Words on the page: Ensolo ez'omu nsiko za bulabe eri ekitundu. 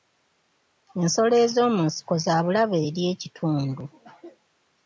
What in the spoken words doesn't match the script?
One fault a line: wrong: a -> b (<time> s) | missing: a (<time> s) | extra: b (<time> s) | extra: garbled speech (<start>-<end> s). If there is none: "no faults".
no faults